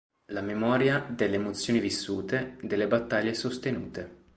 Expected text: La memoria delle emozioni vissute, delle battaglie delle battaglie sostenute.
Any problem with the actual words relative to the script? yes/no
yes